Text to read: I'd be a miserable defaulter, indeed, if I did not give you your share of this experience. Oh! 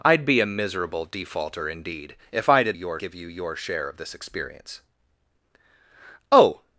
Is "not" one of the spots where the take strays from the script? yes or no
yes